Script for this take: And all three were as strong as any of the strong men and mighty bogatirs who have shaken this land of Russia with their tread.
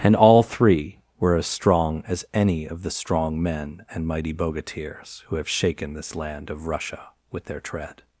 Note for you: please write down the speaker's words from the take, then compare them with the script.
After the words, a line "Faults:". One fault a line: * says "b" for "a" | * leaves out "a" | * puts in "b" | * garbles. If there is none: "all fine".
And all three were as strong as any of the strong men and mighty bogatirs who have shaken this land of Russia with their tread.
Faults:
all fine